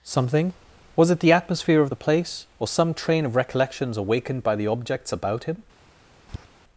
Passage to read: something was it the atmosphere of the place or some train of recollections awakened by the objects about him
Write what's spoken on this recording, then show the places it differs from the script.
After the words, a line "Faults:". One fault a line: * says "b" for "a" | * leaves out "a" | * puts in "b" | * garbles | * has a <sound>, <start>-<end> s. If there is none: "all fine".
something was it the atmosphere of the place or some train of recollections awakened by the objects about him
Faults:
* has a tap, 6.3-6.5 s